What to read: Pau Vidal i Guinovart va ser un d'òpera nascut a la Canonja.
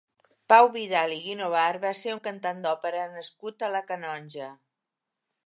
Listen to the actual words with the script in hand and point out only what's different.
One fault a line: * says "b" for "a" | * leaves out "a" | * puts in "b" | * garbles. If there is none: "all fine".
* puts in "cantant"